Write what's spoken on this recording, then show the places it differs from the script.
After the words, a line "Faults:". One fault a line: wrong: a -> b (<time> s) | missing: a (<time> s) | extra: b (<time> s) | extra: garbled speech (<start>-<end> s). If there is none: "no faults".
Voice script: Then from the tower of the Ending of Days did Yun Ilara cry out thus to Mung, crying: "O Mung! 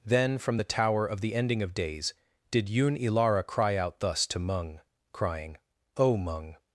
Then from the tower of the Ending of Days did Yun Ilara cry out thus to Mung, crying: "O Mung!
Faults:
no faults